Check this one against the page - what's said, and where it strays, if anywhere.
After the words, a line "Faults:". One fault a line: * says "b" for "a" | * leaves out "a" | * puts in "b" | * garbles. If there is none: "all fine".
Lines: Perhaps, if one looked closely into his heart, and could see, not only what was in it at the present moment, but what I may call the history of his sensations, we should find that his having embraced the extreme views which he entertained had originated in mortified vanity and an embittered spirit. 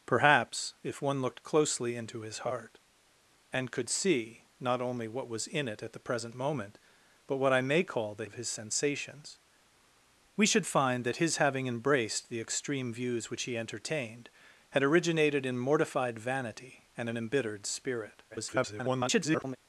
Perhaps, if one looked closely into his heart, and could see, not only what was in it at the present moment, but what I may call the of his sensations, we should find that his having embraced the extreme views which he entertained had originated in mortified vanity and an embittered spirit. [garbled]
Faults:
* leaves out "history"
* garbles